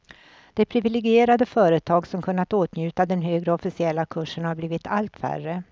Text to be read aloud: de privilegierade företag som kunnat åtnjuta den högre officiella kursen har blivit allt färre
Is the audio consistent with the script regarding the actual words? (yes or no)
yes